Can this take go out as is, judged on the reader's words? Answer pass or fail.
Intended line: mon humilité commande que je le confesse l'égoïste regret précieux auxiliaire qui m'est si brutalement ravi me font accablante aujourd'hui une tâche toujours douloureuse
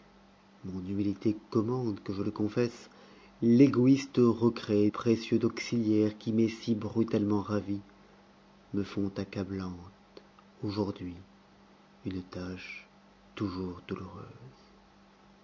pass